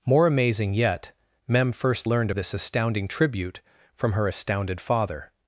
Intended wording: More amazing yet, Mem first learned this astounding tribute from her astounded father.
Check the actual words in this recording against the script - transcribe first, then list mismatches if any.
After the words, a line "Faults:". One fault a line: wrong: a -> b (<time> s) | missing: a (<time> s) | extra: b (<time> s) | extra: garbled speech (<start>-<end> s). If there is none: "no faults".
More amazing yet, Mem first learned this astounding tribute from her astounded father.
Faults:
no faults